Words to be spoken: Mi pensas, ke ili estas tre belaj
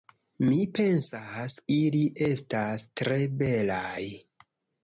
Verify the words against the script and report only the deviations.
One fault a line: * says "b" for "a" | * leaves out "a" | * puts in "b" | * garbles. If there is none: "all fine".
* leaves out "ke"